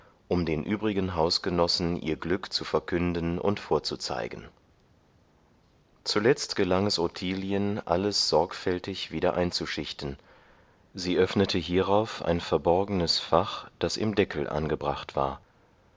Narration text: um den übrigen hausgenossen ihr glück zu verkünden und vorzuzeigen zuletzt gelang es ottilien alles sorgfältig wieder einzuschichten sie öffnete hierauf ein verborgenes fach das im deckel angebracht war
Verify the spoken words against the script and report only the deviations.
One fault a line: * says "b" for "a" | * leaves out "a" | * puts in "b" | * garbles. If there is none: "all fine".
all fine